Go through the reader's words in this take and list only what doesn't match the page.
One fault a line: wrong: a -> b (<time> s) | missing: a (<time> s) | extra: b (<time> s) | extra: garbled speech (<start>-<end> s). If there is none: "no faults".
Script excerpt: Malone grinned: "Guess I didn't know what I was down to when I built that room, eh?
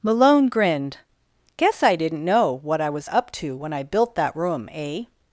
wrong: down -> up (3.1 s)